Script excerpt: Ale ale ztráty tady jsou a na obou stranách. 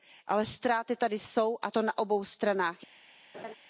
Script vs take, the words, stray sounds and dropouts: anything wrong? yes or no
yes